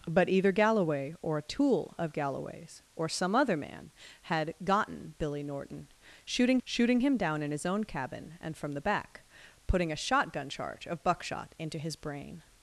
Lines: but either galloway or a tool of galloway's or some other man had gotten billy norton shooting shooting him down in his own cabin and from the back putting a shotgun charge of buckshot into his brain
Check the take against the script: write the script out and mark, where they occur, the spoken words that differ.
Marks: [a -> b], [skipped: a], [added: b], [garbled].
but either galloway or a tool of galloway's or some other man had gotten billy norton shooting shooting him down in his own cabin and from the back putting a shotgun charge of buckshot into his brain